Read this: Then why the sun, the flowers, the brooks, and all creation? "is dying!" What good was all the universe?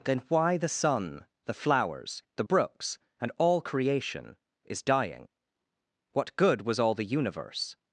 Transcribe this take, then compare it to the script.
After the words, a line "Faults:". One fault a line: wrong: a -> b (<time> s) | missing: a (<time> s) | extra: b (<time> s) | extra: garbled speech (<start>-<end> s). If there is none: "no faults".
Then why the sun, the flowers, the brooks, and all creation? "is dying!" What good was all the universe?
Faults:
no faults